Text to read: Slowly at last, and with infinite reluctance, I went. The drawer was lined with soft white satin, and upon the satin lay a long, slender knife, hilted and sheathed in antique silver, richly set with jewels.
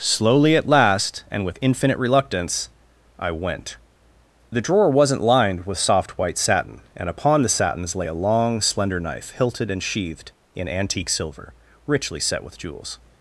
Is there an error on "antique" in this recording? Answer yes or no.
no